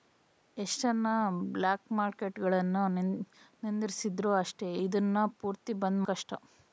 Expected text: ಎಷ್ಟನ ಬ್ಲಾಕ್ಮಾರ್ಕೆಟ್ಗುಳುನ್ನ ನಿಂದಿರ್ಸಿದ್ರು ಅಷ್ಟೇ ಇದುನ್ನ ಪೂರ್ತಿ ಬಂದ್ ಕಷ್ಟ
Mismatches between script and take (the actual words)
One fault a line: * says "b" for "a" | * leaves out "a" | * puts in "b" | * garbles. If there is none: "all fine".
all fine